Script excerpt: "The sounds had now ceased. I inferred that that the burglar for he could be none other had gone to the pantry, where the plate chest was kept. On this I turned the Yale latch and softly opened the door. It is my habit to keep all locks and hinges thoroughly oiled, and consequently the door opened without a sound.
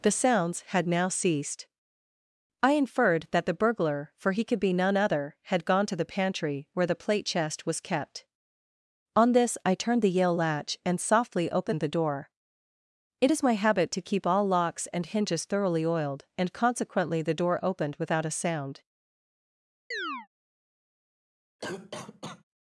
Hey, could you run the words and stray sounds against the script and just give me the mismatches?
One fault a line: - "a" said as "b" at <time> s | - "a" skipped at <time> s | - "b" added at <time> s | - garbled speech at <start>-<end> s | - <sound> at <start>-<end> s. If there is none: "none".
- "that" skipped at 3.5 s
- chirp at 19.9-20.3 s
- cough at 21.6-22.4 s